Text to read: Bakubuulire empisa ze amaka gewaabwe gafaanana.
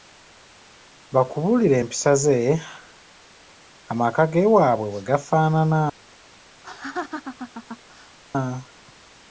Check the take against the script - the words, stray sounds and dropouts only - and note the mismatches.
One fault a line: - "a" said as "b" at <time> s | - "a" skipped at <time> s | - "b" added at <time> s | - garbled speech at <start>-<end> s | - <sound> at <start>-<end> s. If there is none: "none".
- "bwe" added at 4.9 s
- laugh at 6.6-8.2 s